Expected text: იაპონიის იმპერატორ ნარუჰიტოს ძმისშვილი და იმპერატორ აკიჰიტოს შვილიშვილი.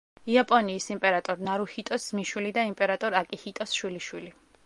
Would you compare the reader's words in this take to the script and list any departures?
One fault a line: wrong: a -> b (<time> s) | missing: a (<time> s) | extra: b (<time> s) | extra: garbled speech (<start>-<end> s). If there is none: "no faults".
no faults